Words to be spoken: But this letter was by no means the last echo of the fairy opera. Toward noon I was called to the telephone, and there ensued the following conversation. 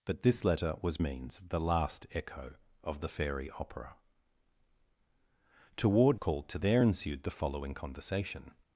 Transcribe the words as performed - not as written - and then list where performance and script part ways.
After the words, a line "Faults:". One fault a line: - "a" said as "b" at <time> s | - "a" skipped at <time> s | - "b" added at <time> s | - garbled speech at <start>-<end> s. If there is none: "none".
But this letter was means the last echo of the fairy opera. Toward called to there ensued the following conversation.
Faults:
- "by no" skipped at 1.0 s
- "noon I was" skipped at 6.2 s
- "the telephone and" skipped at 6.6 s